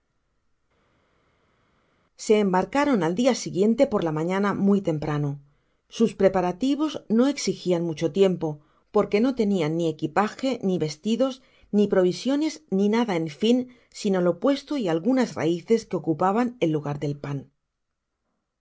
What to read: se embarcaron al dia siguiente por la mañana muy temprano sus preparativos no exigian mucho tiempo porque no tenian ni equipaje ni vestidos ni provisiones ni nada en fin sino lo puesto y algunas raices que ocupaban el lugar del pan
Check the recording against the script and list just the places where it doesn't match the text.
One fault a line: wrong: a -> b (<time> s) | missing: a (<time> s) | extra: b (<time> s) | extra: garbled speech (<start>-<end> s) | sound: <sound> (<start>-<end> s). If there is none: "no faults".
no faults